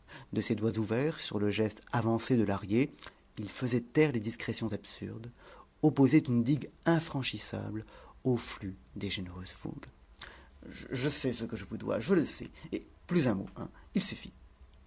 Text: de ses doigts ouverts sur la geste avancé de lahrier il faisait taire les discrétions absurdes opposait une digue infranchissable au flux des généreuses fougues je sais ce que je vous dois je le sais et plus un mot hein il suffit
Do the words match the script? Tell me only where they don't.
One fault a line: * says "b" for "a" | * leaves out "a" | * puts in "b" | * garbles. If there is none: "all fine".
* says "le" for "la"